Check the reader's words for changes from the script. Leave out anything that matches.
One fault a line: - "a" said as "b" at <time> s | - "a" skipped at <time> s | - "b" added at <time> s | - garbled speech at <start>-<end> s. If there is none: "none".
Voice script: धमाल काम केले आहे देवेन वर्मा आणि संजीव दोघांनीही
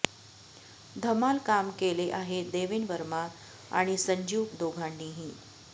none